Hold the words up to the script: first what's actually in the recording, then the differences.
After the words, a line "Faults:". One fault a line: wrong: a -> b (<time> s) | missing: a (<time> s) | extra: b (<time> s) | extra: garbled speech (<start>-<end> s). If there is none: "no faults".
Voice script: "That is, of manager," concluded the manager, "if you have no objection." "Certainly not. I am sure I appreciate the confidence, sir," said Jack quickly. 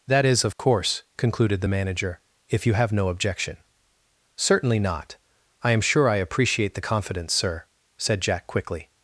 "That is, of course," concluded the manager, "if you have no objection." "Certainly not. I am sure I appreciate the confidence, sir," said Jack quickly.
Faults:
wrong: manager -> course (0.6 s)